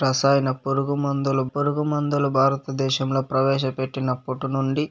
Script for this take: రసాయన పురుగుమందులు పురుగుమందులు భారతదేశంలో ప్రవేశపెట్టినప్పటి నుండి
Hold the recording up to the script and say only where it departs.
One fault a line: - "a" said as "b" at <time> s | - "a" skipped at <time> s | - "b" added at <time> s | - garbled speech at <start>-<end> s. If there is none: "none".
none